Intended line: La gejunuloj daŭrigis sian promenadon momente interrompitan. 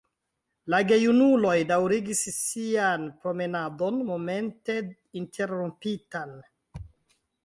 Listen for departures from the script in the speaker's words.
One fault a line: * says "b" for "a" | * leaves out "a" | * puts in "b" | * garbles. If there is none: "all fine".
all fine